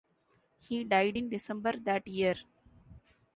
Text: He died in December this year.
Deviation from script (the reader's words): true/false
true